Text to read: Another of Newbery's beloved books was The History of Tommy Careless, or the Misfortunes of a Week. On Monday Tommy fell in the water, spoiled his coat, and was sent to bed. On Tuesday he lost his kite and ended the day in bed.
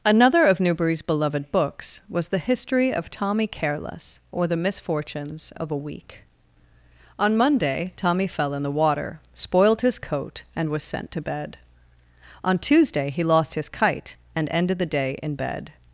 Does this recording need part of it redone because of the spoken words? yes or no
no